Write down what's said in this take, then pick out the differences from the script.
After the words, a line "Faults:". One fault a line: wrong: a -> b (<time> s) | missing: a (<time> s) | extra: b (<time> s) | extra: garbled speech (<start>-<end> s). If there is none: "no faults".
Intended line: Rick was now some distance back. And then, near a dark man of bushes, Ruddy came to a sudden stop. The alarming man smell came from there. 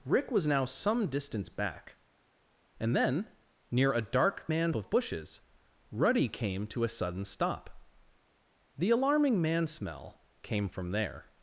Rick was now some distance back. And then, near a dark man of bushes, Ruddy came to a sudden stop. The alarming man smell came from there.
Faults:
no faults